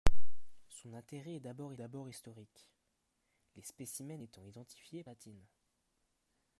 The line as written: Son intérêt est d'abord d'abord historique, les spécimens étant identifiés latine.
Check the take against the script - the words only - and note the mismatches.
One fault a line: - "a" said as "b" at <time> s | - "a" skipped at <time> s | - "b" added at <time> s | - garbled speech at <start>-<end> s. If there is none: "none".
none